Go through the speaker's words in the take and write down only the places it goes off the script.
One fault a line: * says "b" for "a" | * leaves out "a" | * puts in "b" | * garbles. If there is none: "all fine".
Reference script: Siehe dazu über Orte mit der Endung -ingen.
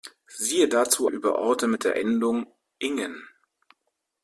all fine